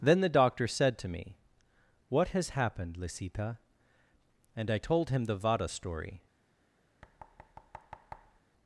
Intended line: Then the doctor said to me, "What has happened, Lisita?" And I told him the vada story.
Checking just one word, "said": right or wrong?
right